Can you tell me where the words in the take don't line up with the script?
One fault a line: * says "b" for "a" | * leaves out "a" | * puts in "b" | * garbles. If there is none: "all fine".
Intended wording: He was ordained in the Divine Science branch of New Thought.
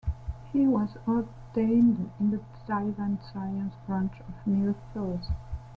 all fine